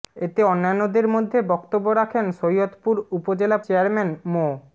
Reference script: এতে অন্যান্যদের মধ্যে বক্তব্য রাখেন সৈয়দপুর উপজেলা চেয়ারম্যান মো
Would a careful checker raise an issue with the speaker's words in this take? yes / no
no